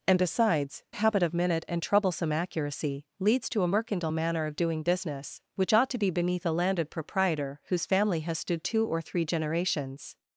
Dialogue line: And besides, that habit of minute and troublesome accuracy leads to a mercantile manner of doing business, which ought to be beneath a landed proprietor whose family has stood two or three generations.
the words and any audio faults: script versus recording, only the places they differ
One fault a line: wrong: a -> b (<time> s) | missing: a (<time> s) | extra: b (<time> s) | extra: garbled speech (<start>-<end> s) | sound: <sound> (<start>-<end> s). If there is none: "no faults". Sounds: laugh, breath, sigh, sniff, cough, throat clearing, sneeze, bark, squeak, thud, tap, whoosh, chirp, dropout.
missing: that (0.8 s)